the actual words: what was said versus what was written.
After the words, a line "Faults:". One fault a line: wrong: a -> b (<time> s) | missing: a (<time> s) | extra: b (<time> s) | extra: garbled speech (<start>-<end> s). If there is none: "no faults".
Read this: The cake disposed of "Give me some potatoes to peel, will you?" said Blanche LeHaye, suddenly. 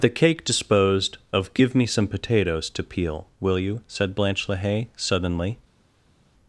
The cake disposed of "Give me some potatoes to peel, will you?" said Blanche LeHaye, suddenly.
Faults:
no faults